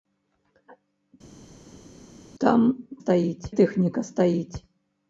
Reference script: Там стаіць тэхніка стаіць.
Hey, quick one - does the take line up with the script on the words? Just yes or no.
yes